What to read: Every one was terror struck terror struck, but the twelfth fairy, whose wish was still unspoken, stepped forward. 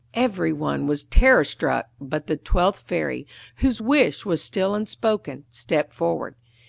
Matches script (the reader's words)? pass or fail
fail